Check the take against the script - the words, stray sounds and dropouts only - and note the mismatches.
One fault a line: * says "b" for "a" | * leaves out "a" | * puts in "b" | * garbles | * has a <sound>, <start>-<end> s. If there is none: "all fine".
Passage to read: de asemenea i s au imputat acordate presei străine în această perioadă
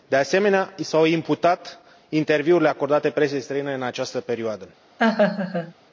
* puts in "interviurile"
* has a laugh, 5.0-5.7 s